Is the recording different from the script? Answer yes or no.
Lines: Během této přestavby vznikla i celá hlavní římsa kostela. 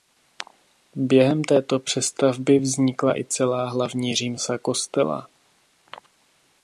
no